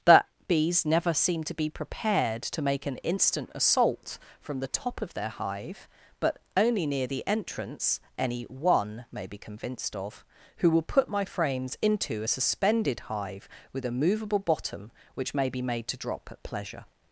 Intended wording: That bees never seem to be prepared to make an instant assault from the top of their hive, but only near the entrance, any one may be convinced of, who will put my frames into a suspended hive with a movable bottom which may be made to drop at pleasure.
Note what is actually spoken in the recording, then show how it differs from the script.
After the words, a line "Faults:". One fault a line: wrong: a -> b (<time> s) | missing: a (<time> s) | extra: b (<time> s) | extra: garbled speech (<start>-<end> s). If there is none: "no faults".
That bees never seem to be prepared to make an instant assault from the top of their hive, but only near the entrance, any one may be convinced of, who will put my frames into a suspended hive with a movable bottom which may be made to drop at pleasure.
Faults:
no faults